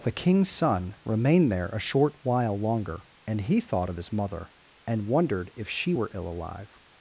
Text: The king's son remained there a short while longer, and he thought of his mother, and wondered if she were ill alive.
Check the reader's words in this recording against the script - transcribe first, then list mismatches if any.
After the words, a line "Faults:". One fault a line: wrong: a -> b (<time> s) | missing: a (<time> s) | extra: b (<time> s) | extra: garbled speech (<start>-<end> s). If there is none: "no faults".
The king's son remained there a short while longer, and he thought of his mother, and wondered if she were ill alive.
Faults:
no faults